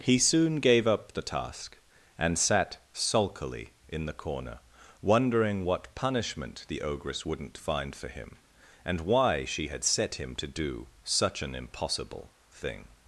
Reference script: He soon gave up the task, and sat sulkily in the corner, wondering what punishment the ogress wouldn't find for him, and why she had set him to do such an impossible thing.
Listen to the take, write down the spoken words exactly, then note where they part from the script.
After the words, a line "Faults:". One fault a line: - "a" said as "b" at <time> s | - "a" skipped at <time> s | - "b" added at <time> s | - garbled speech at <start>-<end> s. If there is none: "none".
He soon gave up the task, and sat sulkily in the corner, wondering what punishment the ogress wouldn't find for him, and why she had set him to do such an impossible thing.
Faults:
none